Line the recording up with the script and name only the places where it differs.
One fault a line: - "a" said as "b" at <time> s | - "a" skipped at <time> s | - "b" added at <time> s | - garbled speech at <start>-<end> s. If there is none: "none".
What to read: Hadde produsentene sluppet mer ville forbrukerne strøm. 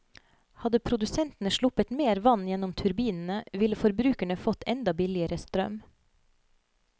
- "vann gjennom turbinene" added at 2.3 s
- "fått enda billigere" added at 4.5 s